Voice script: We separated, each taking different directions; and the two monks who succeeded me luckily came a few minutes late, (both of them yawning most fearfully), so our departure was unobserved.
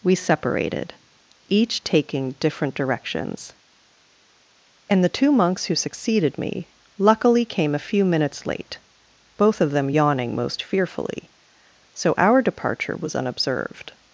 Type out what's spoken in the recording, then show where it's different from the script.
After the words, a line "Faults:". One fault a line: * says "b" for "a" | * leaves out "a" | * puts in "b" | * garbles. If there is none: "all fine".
We separated, each taking different directions; and the two monks who succeeded me luckily came a few minutes late, (both of them yawning most fearfully), so our departure was unobserved.
Faults:
all fine